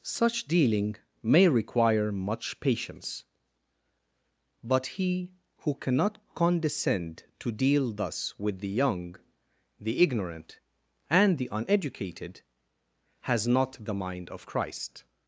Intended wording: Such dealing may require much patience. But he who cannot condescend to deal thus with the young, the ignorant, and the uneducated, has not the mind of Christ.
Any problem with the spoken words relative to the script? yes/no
no